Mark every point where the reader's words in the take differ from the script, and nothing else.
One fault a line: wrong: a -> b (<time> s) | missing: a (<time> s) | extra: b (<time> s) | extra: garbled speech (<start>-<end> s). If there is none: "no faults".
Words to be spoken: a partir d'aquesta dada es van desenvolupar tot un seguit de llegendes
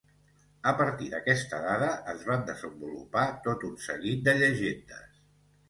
no faults